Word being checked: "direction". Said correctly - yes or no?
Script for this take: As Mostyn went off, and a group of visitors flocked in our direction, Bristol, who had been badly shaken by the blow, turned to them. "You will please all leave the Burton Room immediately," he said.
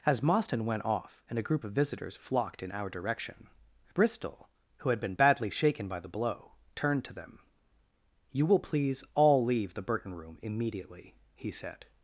yes